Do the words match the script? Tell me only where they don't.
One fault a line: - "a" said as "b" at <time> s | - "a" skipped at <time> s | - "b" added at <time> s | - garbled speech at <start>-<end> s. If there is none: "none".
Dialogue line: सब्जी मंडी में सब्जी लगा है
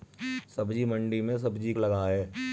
none